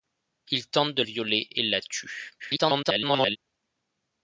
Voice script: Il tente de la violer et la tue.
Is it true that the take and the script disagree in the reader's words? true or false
true